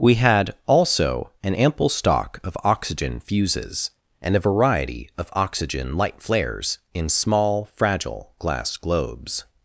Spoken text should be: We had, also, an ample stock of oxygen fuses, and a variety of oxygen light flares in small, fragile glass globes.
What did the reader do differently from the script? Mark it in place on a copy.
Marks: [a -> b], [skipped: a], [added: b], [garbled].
We had, also, an ample stock of oxygen fuses, and a variety of oxygen light flares in small, fragile glass globes.